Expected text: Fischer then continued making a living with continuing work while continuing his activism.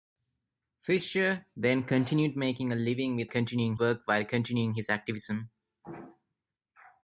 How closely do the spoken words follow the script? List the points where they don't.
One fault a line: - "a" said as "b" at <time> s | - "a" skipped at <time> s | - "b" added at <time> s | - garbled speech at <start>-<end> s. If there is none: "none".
none